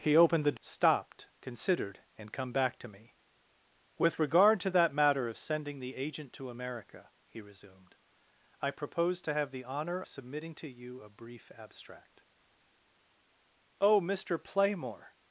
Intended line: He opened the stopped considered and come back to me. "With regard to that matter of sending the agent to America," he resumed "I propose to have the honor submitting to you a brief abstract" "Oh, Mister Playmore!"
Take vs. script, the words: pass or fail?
pass